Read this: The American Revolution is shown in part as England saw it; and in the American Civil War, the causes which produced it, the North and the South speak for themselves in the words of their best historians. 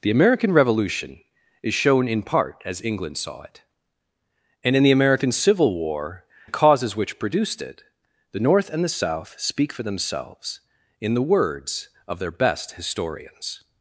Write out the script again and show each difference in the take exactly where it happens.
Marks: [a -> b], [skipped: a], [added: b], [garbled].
The American Revolution is shown in part as England saw it; and in the American Civil War, the causes which produced it, the North and the South speak for themselves in the words of their best historians.